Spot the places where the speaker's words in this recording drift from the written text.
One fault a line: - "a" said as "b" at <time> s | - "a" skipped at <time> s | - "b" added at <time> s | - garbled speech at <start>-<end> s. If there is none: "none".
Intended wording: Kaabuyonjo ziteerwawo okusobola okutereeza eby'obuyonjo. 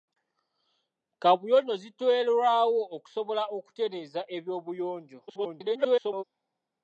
- garbled speech at 5.3-6.2 s